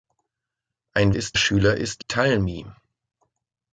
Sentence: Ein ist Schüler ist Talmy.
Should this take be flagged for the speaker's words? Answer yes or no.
no